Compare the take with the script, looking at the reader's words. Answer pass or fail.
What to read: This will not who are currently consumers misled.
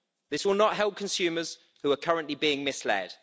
fail